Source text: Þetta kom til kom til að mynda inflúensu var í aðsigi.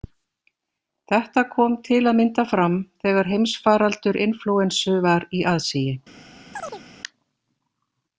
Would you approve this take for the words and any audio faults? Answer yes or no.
no